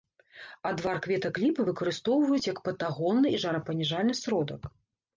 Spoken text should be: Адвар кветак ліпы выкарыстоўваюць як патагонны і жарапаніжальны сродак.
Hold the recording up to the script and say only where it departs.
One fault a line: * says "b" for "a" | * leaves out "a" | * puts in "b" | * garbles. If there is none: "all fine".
all fine